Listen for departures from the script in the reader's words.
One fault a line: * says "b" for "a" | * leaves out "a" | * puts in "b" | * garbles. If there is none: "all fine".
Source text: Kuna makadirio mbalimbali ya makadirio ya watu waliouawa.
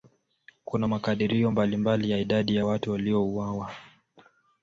* says "idadi" for "makadirio"